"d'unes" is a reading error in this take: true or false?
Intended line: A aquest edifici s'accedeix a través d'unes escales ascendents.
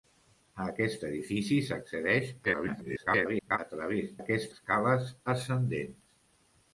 true